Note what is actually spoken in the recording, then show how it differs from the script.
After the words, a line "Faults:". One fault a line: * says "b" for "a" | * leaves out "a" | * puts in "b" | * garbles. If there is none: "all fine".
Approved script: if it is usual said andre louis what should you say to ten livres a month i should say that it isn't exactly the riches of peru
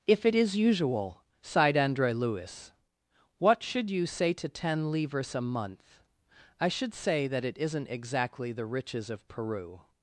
if it is usual sighed andre louis what should you say to ten livres a month i should say that it isn't exactly the riches of peru
Faults:
* says "sighed" for "said"